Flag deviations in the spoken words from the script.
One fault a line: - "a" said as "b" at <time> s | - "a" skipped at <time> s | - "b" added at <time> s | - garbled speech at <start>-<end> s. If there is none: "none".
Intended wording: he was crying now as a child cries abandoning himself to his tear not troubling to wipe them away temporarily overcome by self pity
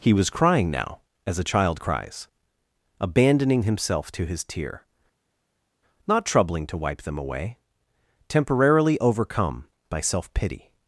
none